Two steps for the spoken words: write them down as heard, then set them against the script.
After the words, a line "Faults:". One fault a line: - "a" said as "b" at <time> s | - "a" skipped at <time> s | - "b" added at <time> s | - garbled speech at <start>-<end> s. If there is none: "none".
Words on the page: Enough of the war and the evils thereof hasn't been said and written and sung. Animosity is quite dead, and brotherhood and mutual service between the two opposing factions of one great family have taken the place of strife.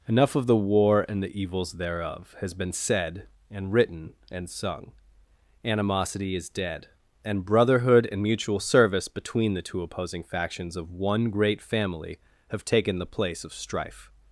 Enough of the war and the evils thereof has been said and written and sung. Animosity is dead, and brotherhood and mutual service between the two opposing factions of one great family have taken the place of strife.
Faults:
- "hasn't" said as "has" at 2.4 s
- "quite" skipped at 6.5 s